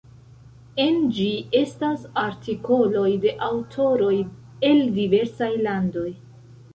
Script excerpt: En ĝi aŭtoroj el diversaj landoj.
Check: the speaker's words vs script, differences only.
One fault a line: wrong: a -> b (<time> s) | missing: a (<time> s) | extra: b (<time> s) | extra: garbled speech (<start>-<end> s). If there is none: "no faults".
extra: estas artikoloj de (1.6 s)